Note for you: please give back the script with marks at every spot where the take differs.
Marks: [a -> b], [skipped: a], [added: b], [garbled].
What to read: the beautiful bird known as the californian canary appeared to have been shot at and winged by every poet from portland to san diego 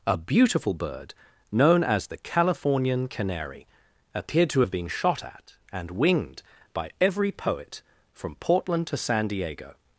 [the -> a] beautiful bird known as the californian canary appeared to have been shot at and winged by every poet from portland to san diego